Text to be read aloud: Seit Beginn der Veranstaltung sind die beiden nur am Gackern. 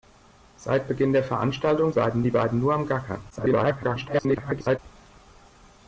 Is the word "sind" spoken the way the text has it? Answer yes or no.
no